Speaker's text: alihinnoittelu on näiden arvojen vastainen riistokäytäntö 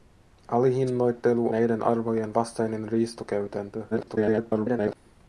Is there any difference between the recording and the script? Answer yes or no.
yes